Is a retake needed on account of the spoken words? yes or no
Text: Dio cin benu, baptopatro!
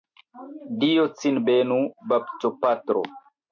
no